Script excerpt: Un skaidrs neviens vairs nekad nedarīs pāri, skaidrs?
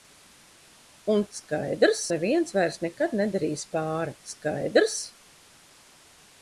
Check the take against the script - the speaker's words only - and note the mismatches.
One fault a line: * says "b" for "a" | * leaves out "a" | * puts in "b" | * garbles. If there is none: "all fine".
all fine